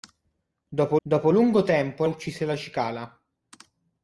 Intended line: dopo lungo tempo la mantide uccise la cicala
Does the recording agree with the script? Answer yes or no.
no